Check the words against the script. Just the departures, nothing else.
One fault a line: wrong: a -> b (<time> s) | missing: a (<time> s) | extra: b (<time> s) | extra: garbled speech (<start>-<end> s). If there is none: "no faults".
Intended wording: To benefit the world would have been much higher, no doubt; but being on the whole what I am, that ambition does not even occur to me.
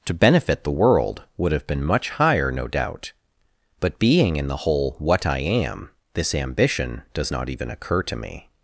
wrong: on -> in (4.3 s)
wrong: that -> this (6.1 s)